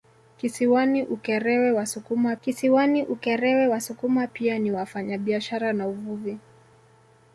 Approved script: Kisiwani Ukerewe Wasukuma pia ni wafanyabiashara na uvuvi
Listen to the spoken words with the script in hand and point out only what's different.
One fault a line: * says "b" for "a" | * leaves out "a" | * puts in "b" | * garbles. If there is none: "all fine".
* puts in "kisiwani Ukerewe Wasukuma"